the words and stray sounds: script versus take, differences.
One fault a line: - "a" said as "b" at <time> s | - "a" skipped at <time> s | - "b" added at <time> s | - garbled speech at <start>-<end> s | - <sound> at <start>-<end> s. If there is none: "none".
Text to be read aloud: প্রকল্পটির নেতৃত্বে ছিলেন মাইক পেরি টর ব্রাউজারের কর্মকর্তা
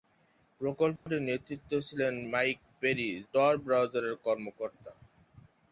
- dropout at 1.0-1.1 s